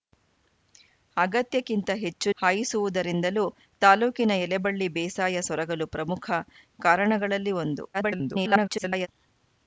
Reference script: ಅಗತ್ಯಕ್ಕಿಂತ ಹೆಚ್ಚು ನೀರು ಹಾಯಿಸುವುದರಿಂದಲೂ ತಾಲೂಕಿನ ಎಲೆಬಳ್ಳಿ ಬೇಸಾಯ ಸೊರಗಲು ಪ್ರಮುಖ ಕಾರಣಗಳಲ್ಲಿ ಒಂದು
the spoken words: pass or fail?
fail